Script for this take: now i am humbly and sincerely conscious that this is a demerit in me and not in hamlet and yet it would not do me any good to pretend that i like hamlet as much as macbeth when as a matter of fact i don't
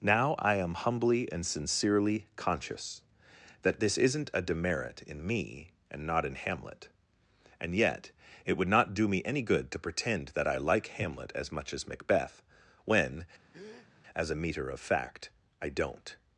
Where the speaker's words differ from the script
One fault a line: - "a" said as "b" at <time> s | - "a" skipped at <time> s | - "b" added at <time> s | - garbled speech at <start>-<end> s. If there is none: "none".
- "is" said as "isn't" at 4.0 s
- "matter" said as "meter" at 14.4 s